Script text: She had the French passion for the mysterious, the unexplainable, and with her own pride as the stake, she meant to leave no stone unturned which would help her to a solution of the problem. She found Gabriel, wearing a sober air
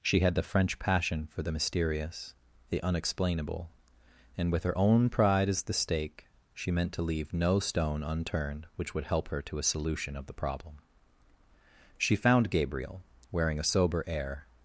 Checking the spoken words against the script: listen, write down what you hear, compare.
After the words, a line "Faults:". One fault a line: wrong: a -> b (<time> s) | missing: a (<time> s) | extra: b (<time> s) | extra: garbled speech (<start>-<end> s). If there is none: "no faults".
She had the French passion for the mysterious, the unexplainable, and with her own pride as the stake, she meant to leave no stone unturned which would help her to a solution of the problem. She found Gabriel, wearing a sober air
Faults:
no faults